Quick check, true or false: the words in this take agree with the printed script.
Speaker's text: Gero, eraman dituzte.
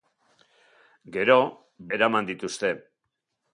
true